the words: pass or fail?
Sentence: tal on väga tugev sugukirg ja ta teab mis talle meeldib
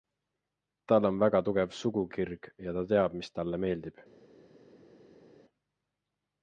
pass